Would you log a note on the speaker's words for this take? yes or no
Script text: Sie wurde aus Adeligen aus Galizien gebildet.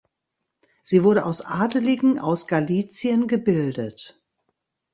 no